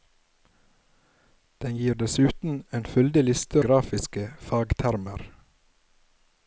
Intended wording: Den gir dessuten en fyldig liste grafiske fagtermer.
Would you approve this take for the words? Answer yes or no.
yes